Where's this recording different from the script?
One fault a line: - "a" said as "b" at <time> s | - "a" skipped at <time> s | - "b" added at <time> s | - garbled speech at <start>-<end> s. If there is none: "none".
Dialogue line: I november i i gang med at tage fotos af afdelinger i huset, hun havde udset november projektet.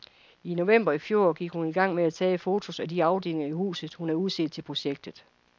- "fjor gik hun" added at 1.0 s
- "de" added at 2.9 s
- "november" said as "til" at 4.5 s